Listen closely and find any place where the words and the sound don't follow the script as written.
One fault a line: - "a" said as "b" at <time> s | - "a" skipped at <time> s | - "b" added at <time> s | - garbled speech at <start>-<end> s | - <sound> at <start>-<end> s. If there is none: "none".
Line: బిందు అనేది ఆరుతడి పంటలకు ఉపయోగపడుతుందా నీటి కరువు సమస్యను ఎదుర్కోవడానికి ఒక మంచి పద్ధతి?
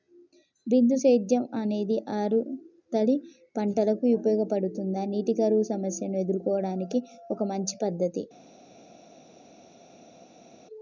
- "సేద్యం" added at 1.0 s